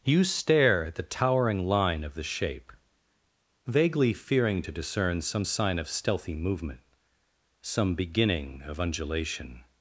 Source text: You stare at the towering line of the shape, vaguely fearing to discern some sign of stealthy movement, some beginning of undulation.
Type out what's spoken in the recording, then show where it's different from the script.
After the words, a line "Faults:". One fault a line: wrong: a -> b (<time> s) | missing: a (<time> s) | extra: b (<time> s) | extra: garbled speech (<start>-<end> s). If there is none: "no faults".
You stare at the towering line of the shape, vaguely fearing to discern some sign of stealthy movement, some beginning of undulation.
Faults:
no faults